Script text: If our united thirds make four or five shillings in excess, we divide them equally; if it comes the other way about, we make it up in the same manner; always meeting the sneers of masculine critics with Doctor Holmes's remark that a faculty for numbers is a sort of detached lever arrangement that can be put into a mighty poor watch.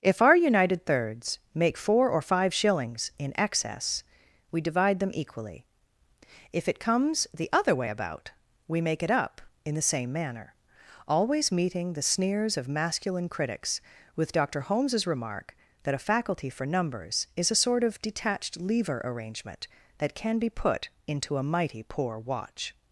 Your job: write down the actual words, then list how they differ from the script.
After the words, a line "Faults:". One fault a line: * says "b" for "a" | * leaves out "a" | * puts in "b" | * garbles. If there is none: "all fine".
If our united thirds make four or five shillings in excess, we divide them equally; if it comes the other way about, we make it up in the same manner; always meeting the sneers of masculine critics with Doctor Holmes's remark that a faculty for numbers is a sort of detached lever arrangement that can be put into a mighty poor watch.
Faults:
all fine